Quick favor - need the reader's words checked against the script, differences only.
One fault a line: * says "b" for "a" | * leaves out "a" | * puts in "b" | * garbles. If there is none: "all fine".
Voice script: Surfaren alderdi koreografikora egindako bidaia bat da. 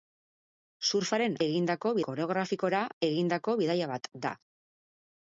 * says "egindako" for "alderdi"